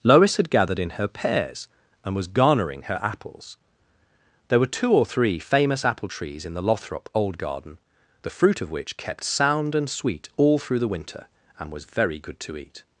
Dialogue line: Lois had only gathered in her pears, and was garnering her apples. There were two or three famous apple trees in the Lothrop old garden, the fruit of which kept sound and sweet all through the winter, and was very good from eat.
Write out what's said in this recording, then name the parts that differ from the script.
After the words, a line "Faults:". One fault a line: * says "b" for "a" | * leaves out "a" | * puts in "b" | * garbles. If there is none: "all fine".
Lois had gathered in her pears, and was garnering her apples. There were two or three famous apple trees in the Lothrop old garden, the fruit of which kept sound and sweet all through the winter, and was very good to eat.
Faults:
* leaves out "only"
* says "to" for "from"